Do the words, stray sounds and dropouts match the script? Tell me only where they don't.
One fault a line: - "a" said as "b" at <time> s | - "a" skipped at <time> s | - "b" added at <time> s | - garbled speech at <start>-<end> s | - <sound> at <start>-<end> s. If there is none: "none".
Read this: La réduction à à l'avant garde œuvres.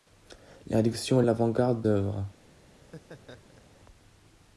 - laugh at 2.7-3.8 s